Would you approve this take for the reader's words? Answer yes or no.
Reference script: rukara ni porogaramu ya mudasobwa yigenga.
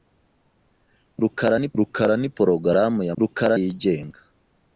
no